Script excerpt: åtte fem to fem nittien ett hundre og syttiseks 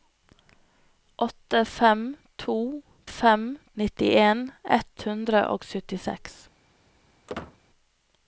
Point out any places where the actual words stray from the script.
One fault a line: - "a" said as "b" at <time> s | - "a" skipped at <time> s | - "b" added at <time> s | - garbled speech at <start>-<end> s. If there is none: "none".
none